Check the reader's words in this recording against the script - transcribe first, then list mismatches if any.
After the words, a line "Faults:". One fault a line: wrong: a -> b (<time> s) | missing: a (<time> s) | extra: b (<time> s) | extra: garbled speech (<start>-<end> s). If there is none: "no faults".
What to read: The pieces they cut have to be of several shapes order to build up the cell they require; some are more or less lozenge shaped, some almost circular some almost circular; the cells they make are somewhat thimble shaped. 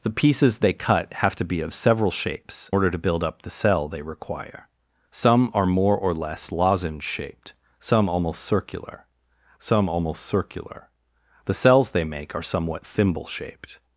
The pieces they cut have to be of several shapes order to build up the cell they require; some are more or less lozenge shaped, some almost circular some almost circular; the cells they make are somewhat thimble shaped.
Faults:
no faults